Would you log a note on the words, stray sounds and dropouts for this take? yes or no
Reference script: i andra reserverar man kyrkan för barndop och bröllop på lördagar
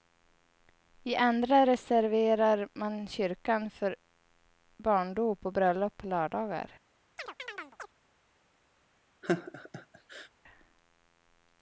yes